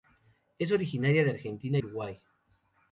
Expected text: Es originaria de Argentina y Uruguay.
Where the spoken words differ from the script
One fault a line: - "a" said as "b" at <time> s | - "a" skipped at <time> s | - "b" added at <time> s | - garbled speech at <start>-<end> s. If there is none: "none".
- "y" skipped at 1.8 s